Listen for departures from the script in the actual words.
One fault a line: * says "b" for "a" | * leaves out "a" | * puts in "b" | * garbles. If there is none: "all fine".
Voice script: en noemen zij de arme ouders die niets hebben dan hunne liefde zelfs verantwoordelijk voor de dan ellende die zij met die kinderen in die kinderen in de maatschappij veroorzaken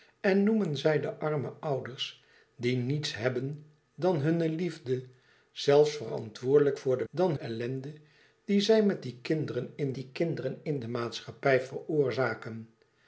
all fine